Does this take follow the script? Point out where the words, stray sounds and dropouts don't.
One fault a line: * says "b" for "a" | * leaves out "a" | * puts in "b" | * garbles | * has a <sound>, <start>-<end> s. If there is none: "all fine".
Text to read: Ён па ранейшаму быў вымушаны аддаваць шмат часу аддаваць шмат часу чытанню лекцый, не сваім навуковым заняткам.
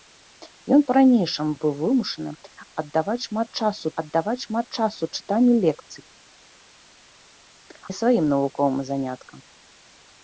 all fine